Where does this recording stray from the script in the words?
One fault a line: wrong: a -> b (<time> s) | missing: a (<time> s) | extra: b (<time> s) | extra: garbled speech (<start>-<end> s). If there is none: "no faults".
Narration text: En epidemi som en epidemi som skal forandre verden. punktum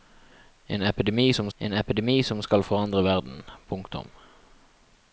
no faults